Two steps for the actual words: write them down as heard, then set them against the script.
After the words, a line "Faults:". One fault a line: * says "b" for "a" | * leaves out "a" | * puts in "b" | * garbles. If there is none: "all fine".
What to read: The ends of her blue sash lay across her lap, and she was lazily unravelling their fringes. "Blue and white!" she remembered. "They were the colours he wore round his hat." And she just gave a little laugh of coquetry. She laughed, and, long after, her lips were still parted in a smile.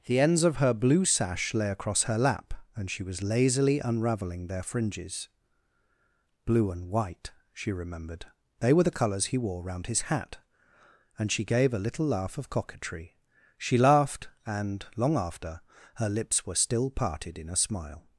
The ends of her blue sash lay across her lap, and she was lazily unravelling their fringes. "Blue and white!" she remembered. "They were the colours he wore round his hat." And she gave a little laugh of coquetry. She laughed, and, long after, her lips were still parted in a smile.
Faults:
* leaves out "just"